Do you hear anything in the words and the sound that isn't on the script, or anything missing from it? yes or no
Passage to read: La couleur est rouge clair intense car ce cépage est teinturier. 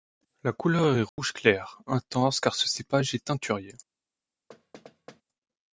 yes